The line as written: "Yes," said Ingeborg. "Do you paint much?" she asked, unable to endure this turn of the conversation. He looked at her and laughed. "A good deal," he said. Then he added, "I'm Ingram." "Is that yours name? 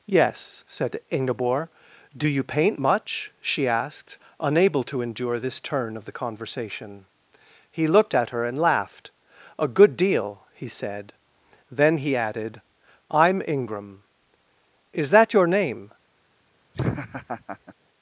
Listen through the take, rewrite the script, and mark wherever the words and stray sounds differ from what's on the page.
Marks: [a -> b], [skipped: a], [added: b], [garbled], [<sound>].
"Yes," said Ingeborg. "Do you paint much?" she asked, unable to endure this turn of the conversation. He looked at her and laughed. "A good deal," he said. Then he added, "I'm Ingram." "Is that [yours -> your] name? [laugh]